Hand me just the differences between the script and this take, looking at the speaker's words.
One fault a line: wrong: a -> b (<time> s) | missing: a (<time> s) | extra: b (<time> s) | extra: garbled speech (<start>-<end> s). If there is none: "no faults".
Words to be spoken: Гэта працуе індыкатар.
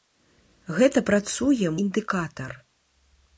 no faults